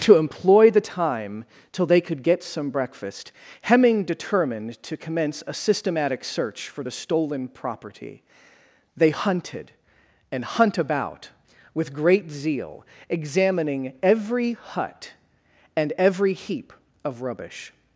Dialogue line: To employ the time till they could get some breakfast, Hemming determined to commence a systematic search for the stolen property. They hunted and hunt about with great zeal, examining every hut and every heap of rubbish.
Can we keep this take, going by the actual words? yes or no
yes